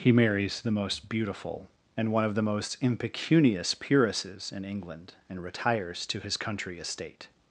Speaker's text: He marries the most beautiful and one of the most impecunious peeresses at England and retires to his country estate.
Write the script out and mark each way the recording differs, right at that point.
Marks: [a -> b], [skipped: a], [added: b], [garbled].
He marries the most beautiful and one of the most impecunious peeresses [at -> in] England and retires to his country estate.